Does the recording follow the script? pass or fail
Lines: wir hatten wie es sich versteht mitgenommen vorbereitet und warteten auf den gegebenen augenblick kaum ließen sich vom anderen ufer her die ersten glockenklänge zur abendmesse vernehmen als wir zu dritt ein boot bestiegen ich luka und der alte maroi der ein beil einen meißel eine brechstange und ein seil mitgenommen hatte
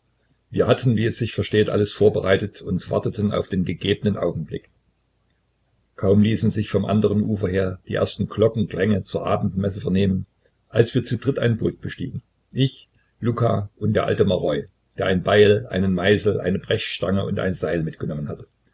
fail